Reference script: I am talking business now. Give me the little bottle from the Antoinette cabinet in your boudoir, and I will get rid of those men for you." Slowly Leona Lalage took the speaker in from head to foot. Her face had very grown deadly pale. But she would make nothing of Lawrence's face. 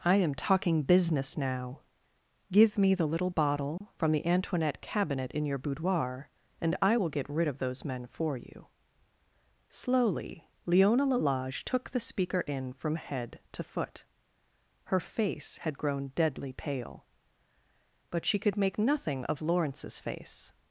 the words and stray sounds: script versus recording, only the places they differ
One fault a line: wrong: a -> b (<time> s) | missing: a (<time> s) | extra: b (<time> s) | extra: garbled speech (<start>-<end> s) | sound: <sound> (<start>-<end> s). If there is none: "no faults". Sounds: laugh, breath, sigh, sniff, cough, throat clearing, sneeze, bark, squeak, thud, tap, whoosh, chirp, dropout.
sound: dropout (3.8-3.8 s)
missing: very (15.8 s)
wrong: would -> could (18.4 s)